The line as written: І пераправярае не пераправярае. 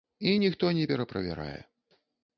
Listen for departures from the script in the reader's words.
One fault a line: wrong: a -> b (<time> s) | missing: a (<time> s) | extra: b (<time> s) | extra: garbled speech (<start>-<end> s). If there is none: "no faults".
wrong: пераправярае -> ніхто (0.4 s)